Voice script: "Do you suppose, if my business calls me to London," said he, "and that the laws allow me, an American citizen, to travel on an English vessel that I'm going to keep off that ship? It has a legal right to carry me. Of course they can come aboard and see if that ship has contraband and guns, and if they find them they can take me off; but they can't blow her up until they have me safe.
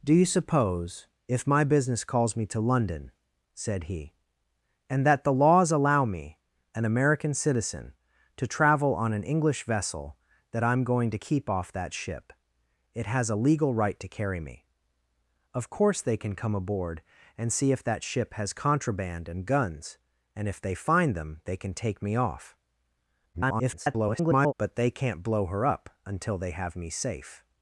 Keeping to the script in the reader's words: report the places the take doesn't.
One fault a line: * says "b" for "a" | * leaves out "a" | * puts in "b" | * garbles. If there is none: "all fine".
* garbles